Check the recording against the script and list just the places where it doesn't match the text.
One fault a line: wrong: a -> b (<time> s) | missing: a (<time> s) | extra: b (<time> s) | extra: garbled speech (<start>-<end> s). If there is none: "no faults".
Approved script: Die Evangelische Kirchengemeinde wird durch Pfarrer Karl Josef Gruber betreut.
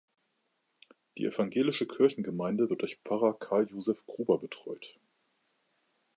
no faults